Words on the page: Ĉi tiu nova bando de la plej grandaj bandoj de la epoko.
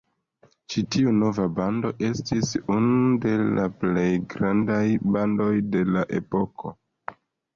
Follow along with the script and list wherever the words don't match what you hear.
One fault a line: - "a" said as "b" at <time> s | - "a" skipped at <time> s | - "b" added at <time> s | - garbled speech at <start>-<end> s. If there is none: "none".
- "estis unu" added at 2.1 s